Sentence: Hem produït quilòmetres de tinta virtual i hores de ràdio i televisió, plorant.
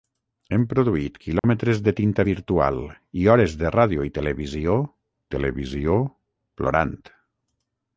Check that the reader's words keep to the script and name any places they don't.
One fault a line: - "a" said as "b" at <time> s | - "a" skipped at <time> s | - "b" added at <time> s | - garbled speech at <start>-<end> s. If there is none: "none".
- "televisió" added at 5.4 s